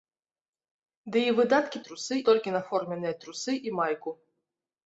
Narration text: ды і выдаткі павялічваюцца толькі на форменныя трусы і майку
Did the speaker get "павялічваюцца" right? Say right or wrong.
wrong